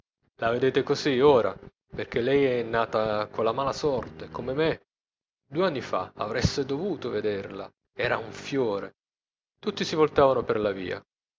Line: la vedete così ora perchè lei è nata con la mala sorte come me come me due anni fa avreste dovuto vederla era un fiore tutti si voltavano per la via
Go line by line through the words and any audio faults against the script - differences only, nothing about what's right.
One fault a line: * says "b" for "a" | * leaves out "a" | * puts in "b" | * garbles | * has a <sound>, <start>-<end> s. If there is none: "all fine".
* leaves out "come me"